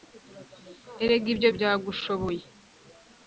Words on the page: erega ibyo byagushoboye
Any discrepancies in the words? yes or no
no